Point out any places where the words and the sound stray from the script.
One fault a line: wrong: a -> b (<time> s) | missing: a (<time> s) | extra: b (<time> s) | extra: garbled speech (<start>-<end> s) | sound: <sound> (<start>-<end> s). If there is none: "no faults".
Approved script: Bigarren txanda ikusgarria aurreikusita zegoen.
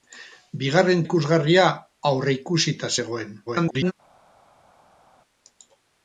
missing: txanda (1.0 s)
extra: garbled speech (3.5-3.9 s)